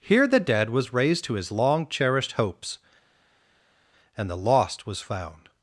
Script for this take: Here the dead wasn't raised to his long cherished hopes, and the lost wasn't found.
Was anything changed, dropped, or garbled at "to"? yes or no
no